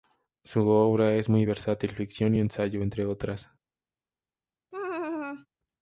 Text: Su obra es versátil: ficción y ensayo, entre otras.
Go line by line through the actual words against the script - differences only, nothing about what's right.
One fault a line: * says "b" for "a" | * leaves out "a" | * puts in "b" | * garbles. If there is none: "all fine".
* puts in "muy"